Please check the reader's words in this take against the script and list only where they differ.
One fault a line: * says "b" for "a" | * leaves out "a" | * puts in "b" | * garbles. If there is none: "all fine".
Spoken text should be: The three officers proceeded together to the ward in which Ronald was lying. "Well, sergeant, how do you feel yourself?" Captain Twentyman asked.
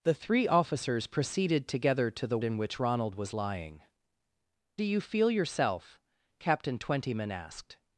* leaves out "ward"
* leaves out "Well sergeant how"